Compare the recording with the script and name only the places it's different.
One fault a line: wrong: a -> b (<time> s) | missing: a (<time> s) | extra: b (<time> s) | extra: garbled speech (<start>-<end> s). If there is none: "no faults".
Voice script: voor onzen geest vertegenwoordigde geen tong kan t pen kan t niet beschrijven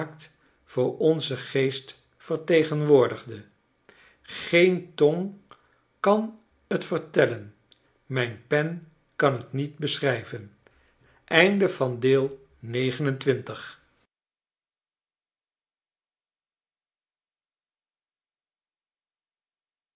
extra: vertellen mijn (6.8 s)